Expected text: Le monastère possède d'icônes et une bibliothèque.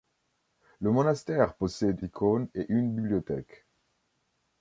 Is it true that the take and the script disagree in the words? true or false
false